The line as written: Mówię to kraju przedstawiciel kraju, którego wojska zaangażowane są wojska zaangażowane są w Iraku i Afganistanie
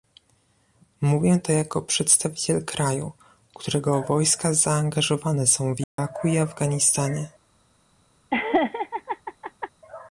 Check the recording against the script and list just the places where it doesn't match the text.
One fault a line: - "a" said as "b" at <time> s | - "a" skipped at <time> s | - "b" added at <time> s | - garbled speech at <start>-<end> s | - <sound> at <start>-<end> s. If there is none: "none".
- "kraju" said as "jako" at 1.5 s
- "wojska zaangażowane są" skipped at 5.7 s
- dropout at 5.8-6.0 s
- laugh at 8.3-9.7 s